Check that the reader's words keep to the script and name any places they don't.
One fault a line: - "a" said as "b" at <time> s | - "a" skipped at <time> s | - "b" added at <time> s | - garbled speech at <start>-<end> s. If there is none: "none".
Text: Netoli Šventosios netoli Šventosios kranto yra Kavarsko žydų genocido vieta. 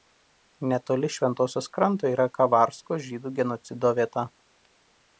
- "netoli Šventosios" skipped at 1.7 s